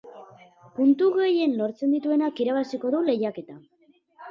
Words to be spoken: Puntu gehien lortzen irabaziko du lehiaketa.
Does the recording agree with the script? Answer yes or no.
no